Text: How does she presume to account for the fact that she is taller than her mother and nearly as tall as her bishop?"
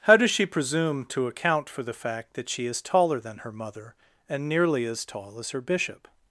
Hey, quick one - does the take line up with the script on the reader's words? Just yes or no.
yes